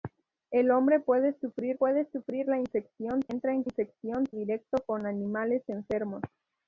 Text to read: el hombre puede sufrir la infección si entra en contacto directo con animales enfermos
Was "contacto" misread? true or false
true